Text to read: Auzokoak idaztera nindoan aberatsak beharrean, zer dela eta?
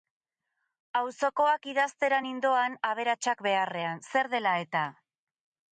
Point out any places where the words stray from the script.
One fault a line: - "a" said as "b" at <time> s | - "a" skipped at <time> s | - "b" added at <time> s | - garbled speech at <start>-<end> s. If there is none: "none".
none